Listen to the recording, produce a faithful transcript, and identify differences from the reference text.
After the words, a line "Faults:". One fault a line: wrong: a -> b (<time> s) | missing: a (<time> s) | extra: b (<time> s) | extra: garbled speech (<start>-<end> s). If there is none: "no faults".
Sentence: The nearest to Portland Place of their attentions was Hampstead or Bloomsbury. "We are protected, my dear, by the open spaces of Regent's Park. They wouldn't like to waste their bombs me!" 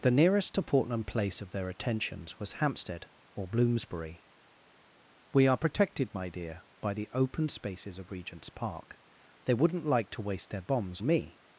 The nearest to Portland Place of their attentions was Hampstead or Bloomsbury. "We are protected, my dear, by the open spaces of Regent's Park. They wouldn't like to waste their bombs me!"
Faults:
no faults